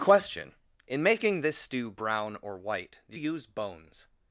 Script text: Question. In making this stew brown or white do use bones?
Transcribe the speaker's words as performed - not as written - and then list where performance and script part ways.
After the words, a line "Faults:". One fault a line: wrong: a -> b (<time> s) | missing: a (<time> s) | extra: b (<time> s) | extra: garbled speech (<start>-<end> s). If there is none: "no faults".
Question. In making this stew brown or white do use bones?
Faults:
no faults